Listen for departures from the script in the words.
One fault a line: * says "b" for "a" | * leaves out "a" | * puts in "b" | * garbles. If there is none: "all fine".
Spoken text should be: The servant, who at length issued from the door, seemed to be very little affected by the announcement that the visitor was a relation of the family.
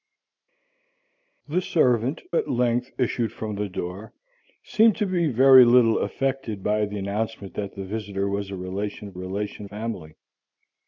* leaves out "who"
* says "relation" for "the"